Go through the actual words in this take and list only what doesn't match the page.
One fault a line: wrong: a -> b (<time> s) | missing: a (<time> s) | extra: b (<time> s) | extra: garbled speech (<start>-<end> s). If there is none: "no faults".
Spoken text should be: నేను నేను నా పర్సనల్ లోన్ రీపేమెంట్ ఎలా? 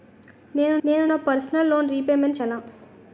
no faults